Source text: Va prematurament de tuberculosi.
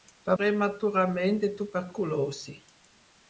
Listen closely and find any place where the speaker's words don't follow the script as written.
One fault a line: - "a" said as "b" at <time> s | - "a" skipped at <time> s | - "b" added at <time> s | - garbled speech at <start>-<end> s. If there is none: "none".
none